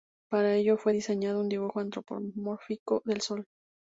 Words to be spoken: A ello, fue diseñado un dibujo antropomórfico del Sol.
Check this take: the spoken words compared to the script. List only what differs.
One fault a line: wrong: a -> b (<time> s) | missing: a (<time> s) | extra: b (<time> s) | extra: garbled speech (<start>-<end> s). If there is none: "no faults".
wrong: A -> Para (0.3 s)